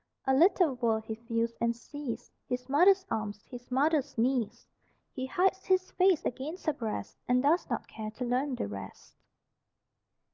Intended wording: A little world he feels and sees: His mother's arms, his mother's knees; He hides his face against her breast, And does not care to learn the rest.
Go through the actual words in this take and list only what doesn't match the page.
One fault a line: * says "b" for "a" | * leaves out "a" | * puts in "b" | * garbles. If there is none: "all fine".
all fine